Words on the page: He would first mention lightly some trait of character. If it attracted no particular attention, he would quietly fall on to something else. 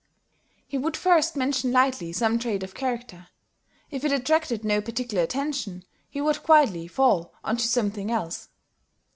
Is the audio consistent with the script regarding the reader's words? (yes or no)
yes